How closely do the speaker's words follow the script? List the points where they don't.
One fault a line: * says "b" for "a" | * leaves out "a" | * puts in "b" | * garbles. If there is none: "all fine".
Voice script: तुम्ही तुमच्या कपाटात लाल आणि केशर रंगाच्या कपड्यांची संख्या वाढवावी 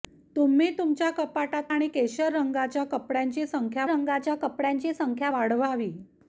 * leaves out "लाल"
* puts in "रंगाच्या कपड्यांची संख्या"